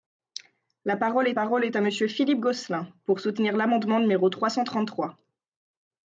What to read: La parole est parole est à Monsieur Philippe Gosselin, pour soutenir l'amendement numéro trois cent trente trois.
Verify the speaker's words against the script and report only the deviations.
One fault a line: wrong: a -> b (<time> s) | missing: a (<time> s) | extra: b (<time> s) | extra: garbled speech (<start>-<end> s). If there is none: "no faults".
no faults